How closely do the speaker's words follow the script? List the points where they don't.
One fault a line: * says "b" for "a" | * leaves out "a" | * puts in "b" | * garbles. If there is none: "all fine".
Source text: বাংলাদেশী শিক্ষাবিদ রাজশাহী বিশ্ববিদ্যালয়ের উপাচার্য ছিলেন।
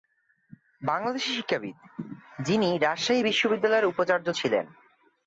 * puts in "যিনি"